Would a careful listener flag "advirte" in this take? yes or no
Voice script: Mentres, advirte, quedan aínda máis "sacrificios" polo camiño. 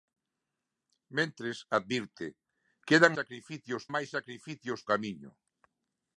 no